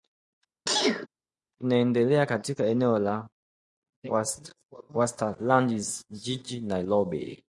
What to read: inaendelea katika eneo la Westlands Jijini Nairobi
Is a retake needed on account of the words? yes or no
no